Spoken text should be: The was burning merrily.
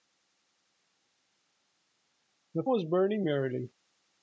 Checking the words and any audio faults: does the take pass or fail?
pass